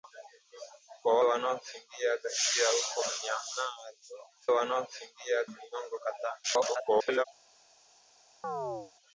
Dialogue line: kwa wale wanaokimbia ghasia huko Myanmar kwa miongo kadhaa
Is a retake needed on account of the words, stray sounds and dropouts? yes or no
yes